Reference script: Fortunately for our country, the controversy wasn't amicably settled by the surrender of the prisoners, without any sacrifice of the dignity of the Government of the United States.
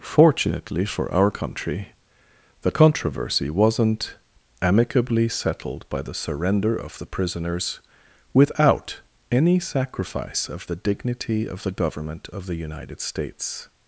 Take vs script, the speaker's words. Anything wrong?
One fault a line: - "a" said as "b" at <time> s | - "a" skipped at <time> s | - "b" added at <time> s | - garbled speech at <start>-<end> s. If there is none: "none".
none